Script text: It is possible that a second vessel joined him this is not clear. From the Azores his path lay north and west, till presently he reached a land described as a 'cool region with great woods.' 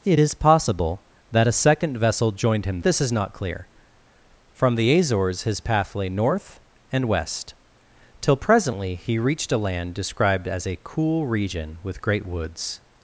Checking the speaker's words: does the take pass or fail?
pass